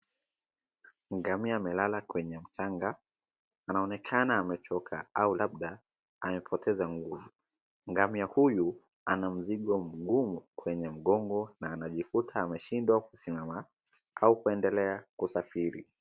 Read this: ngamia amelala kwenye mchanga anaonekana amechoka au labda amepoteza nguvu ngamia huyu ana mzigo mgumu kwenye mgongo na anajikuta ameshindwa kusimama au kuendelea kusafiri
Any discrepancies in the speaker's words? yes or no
no